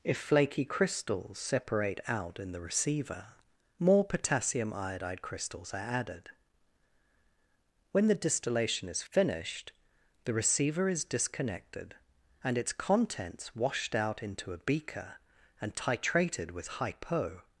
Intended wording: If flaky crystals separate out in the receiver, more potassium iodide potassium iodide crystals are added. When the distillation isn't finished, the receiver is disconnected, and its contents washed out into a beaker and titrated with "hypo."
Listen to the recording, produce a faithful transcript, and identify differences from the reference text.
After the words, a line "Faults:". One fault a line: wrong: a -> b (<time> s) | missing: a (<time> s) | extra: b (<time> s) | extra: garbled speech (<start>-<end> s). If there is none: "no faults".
If flaky crystals separate out in the receiver, more potassium iodide crystals are added. When the distillation is finished, the receiver is disconnected, and its contents washed out into a beaker and titrated with "hypo."
Faults:
missing: potassium iodide (5.2 s)
wrong: isn't -> is (8.9 s)